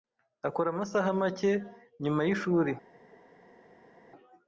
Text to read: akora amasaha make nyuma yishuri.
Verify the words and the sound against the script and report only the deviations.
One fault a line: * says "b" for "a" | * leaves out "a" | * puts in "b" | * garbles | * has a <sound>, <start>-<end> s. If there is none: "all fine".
all fine